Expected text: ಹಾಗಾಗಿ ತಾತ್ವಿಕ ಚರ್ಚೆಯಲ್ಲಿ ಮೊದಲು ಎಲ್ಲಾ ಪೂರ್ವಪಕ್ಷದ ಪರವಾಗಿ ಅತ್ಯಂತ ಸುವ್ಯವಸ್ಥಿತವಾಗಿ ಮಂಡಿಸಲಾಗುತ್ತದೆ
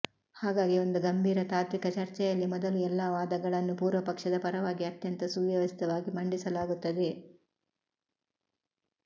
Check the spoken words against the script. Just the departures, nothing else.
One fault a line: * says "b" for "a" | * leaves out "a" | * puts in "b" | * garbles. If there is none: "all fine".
* puts in "ಒಂದು ಗಂಭೀರ"
* puts in "ವಾದಗಳನ್ನೂ"